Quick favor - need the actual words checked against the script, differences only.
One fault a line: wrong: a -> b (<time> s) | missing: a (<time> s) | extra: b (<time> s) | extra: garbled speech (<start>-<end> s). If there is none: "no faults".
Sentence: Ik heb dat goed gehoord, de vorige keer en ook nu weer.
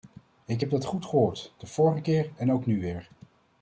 no faults